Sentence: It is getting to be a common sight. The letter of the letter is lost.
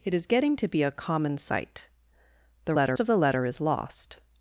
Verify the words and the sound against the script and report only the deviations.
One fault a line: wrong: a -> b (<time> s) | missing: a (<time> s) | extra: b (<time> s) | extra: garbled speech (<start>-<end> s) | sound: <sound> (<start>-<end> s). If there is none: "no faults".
no faults